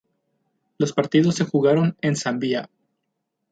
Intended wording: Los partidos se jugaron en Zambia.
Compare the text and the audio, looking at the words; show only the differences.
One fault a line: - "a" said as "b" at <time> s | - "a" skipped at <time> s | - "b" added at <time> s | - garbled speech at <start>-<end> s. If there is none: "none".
none